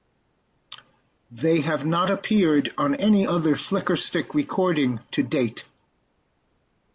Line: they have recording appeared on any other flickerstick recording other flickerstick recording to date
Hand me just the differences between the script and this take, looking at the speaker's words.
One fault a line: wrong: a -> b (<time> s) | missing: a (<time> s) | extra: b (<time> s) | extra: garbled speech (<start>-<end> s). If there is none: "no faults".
wrong: recording -> not (1.9 s)
missing: other flickerstick recording (5.0 s)